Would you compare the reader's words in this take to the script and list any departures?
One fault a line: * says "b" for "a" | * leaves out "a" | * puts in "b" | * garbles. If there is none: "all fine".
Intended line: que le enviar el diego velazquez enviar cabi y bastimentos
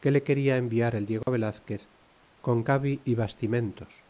* puts in "quena"
* says "con" for "enviar"